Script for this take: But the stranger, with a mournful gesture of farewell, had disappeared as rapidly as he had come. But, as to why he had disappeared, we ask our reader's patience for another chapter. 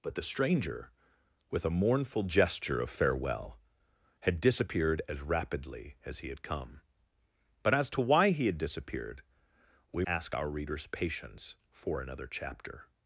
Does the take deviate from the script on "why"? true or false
false